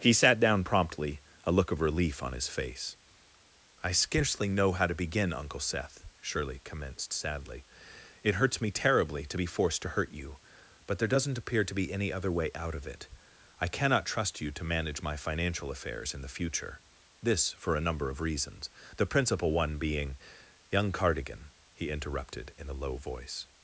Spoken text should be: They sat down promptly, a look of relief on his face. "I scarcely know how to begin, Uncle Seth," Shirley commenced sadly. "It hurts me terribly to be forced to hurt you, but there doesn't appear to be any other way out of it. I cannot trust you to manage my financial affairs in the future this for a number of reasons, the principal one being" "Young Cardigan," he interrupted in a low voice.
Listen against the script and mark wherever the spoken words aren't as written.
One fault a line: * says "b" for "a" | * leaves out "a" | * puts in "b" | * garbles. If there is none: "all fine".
* says "He" for "They"